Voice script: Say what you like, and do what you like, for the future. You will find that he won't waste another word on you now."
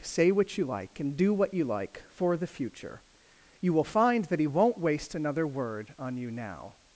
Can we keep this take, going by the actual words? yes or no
yes